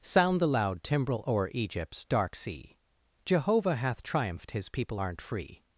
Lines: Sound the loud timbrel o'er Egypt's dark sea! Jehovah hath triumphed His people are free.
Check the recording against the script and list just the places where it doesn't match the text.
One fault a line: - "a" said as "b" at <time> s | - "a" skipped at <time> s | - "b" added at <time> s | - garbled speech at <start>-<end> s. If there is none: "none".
- "are" said as "aren't" at 5.0 s